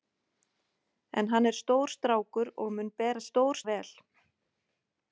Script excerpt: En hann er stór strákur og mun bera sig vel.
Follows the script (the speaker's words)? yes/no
no